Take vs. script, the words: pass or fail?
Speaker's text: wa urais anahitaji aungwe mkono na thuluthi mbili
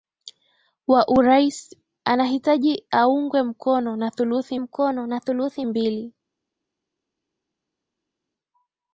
fail